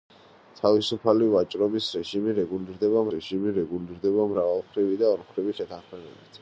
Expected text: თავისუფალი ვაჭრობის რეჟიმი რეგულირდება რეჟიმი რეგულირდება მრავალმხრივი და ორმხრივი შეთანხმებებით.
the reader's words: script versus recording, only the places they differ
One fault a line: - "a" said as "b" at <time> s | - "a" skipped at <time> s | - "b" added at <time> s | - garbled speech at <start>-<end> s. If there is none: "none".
none